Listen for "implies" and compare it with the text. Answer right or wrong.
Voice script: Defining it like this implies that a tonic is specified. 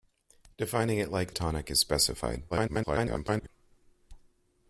wrong